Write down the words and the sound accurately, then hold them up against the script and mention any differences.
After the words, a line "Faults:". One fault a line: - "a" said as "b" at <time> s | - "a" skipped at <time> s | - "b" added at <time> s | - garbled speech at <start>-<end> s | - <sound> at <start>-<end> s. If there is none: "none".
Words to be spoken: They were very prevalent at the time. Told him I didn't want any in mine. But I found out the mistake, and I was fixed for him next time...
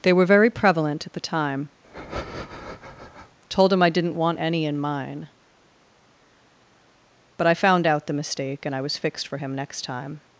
They were very prevalent at the time. Told him I didn't want any in mine. But I found out the mistake, and I was fixed for him next time...
Faults:
- breath at 1.8-3.4 s